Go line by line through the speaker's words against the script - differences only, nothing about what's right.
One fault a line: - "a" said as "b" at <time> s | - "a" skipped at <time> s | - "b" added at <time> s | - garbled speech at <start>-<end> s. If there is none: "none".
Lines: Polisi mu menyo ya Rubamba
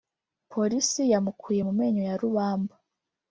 - "yamukuye" added at 1.1 s